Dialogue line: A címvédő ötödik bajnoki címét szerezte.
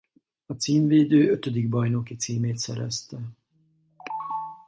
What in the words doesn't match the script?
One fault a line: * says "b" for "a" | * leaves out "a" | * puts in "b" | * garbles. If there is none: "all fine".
all fine